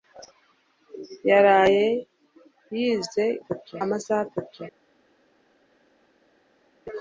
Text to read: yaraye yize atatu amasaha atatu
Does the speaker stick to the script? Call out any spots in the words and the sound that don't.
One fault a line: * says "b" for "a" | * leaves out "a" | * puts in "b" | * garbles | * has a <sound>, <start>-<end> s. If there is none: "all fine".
all fine